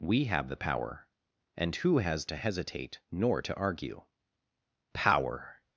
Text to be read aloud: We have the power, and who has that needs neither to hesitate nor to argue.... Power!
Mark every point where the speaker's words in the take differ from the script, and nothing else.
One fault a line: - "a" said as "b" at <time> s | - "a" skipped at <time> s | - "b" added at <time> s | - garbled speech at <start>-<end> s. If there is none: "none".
- "that needs neither" skipped at 2.2 s